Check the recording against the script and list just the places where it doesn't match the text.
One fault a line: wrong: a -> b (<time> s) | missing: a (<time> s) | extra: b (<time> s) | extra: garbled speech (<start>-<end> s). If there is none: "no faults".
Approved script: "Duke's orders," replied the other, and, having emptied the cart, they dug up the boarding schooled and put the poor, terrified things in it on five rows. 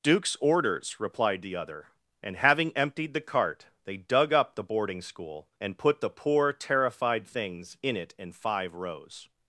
wrong: schooled -> school (5.0 s)
wrong: on -> in (8.2 s)